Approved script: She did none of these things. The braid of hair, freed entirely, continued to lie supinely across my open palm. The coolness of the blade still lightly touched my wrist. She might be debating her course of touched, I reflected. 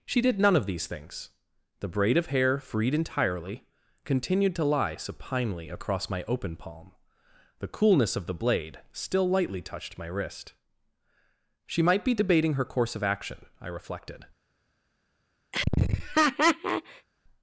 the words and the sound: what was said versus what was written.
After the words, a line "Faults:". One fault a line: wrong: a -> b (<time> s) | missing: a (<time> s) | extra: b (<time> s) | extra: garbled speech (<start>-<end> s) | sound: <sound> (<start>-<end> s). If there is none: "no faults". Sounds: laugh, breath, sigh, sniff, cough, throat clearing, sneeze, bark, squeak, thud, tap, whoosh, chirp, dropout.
She did none of these things. The braid of hair, freed entirely, continued to lie supinely across my open palm. The coolness of the blade still lightly touched my wrist. She might be debating her course of action, I reflected.
Faults:
wrong: touched -> action (13.0 s)
sound: laugh (15.5-17.1 s)